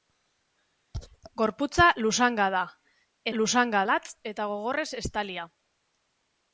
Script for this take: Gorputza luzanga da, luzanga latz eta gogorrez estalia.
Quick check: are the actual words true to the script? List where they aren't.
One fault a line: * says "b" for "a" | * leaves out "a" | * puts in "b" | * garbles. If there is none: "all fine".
all fine